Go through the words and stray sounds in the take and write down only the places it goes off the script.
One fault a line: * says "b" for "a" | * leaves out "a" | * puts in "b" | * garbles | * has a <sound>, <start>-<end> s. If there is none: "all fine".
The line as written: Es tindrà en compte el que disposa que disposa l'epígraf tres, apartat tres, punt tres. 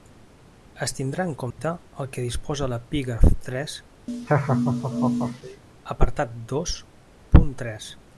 * has a dropout, 1.5-1.6 s
* leaves out "que disposa"
* has a laugh, 4.1-5.6 s
* says "dos" for "tres"